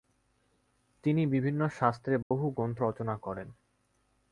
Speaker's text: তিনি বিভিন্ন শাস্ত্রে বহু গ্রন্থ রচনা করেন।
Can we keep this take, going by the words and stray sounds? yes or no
no